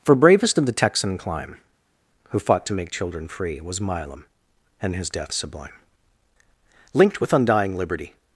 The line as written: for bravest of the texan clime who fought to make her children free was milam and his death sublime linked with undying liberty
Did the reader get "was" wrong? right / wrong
right